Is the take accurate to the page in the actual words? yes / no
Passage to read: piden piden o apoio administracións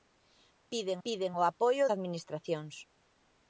yes